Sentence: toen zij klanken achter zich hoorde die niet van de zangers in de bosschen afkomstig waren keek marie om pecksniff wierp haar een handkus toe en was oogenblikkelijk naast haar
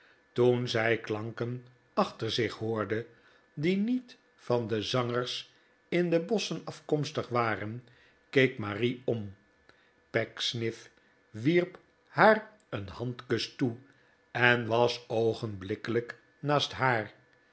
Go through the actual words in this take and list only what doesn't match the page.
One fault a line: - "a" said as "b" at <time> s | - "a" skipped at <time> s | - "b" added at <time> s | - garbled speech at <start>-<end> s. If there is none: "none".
none